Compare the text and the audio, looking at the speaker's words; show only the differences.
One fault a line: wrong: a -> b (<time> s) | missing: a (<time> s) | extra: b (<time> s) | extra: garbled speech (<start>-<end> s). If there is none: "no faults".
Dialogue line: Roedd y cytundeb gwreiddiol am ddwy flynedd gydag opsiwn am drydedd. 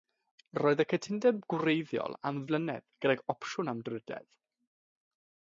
missing: ddwy (2.4 s)